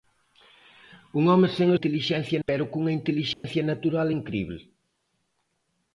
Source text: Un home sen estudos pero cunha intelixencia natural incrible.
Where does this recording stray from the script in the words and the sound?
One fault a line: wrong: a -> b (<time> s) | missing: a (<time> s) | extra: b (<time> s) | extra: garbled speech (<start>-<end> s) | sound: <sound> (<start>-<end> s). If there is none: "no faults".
wrong: estudos -> intelixencia (1.8 s)
sound: dropout (3.3-3.4 s)